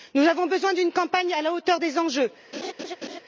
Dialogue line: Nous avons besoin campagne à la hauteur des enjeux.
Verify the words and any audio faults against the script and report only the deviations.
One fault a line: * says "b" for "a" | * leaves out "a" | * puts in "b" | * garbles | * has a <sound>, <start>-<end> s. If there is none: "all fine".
* puts in "d'une"
* has a laugh, 2.5-3.2 s